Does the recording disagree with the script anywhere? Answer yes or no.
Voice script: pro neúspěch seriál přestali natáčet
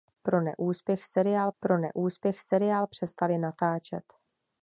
yes